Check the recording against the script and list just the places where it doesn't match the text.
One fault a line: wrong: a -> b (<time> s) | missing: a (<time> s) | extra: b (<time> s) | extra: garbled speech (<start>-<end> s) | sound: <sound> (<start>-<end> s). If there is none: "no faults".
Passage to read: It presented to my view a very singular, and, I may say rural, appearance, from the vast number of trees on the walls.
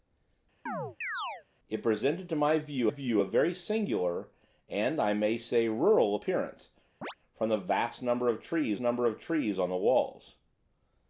sound: chirp (0.7-1.4 s)
extra: view (2.9 s)
sound: chirp (7.0-7.1 s)
extra: number of trees (8.8 s)